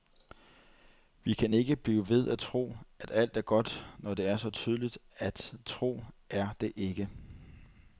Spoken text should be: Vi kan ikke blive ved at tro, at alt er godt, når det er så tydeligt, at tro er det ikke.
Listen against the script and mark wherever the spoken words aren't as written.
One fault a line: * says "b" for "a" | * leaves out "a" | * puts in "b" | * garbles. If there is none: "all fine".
all fine